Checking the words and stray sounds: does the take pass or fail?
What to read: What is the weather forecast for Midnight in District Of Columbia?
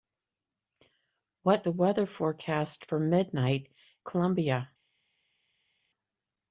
fail